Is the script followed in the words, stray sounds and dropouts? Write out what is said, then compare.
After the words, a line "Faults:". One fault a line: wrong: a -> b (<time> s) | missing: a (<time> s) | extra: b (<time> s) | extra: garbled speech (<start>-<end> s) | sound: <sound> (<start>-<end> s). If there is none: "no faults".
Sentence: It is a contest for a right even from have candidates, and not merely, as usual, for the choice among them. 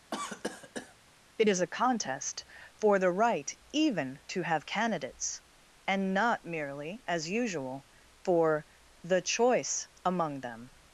It is a contest for the right even to have candidates, and not merely, as usual, for the choice among them.
Faults:
sound: cough (0.1-1.0 s)
wrong: a -> the (3.0 s)
wrong: from -> to (4.3 s)